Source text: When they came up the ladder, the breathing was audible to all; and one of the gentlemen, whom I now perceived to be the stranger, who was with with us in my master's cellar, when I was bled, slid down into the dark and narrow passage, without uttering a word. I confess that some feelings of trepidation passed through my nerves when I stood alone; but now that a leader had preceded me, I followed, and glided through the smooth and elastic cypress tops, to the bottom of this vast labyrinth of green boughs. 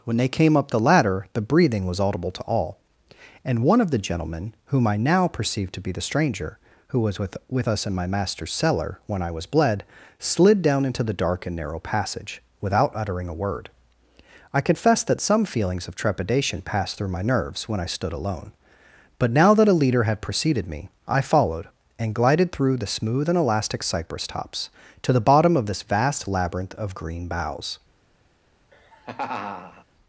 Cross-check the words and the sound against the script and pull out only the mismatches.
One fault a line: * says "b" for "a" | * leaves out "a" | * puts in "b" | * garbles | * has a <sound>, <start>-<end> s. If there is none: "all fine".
* has a laugh, 28.7-29.9 s